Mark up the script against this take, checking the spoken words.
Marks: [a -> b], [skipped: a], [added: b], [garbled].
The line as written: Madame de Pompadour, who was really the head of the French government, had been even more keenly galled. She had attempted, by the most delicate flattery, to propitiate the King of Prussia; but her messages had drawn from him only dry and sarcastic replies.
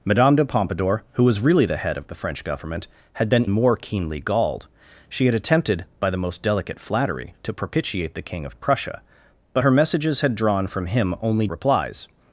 Madame de Pompadour, who was really the head of the French government, had been [skipped: even] more keenly galled. She had attempted, by the most delicate flattery, to propitiate the King of Prussia; but her messages had drawn from him only [skipped: dry and sarcastic] replies.